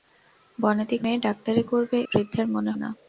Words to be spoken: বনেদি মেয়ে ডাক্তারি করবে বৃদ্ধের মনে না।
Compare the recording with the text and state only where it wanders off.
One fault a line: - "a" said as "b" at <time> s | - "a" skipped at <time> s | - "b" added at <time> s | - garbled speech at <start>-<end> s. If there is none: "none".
none